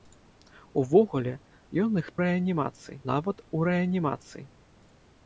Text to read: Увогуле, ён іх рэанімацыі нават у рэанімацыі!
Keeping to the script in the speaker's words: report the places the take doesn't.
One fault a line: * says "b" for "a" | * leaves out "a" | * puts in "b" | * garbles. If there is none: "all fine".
all fine